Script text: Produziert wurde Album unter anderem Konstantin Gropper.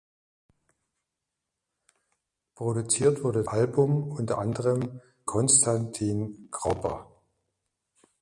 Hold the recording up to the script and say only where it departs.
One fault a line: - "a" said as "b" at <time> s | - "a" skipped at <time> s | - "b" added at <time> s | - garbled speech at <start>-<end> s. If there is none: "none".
none